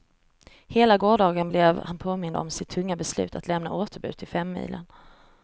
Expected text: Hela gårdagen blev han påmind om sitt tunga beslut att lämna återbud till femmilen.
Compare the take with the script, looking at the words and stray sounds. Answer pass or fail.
pass